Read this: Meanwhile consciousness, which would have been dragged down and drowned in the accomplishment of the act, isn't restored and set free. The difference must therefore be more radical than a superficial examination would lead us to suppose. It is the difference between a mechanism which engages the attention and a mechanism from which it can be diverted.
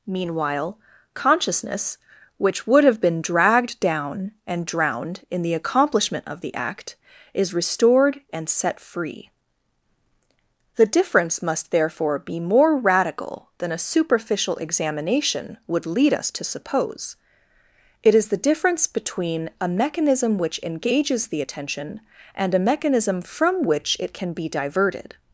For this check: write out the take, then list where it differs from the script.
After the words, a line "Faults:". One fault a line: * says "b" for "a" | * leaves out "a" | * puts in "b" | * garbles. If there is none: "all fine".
Meanwhile consciousness, which would have been dragged down and drowned in the accomplishment of the act, is restored and set free. The difference must therefore be more radical than a superficial examination would lead us to suppose. It is the difference between a mechanism which engages the attention and a mechanism from which it can be diverted.
Faults:
* says "is" for "isn't"